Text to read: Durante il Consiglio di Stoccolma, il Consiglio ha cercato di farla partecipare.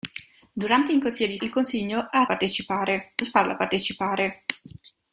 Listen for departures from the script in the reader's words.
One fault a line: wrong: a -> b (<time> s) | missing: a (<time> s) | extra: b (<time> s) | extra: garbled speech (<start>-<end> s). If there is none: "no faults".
missing: Stoccolma (1.4 s)
wrong: cercato -> partecipare (2.2 s)